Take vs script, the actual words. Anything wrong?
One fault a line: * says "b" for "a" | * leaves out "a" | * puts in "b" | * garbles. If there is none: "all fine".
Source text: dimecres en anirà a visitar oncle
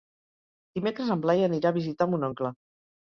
* puts in "blai"
* puts in "mon"